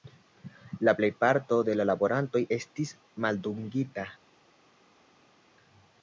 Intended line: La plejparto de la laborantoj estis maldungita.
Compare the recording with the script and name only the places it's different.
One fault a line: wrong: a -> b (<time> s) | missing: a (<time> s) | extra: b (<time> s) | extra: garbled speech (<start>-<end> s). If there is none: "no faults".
no faults